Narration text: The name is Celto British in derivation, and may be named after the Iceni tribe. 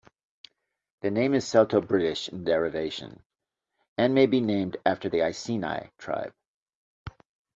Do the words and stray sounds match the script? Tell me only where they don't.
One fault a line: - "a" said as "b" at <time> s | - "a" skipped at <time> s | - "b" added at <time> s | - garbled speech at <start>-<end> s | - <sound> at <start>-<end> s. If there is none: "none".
none